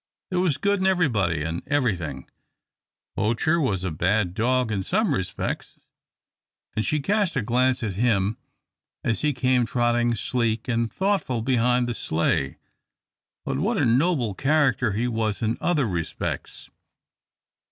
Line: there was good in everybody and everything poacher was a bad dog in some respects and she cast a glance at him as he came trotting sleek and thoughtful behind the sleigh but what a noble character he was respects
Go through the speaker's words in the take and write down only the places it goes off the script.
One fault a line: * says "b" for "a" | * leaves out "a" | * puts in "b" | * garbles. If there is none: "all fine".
* puts in "in other"